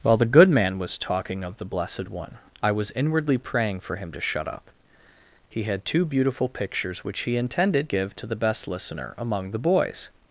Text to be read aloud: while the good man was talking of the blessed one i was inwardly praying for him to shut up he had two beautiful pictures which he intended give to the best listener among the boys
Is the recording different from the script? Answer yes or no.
no